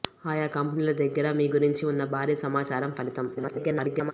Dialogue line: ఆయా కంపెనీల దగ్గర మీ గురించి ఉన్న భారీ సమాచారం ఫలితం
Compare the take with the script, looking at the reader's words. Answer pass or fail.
fail